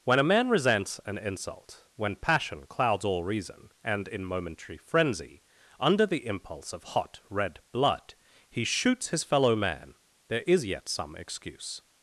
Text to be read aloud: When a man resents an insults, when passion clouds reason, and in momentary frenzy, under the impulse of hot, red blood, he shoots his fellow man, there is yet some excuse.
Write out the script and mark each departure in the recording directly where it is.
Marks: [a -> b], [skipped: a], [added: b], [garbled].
When a man resents an [insults, -> insult] when passion clouds [added: all] reason, and in momentary frenzy, under the impulse of hot, red blood, he shoots his fellow man, there is yet some excuse.